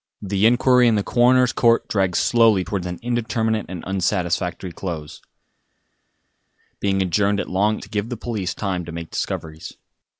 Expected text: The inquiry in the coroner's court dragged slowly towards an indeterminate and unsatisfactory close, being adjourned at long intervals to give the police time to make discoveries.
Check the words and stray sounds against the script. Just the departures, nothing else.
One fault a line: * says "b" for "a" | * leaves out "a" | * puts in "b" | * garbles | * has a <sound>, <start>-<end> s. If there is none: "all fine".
* leaves out "intervals"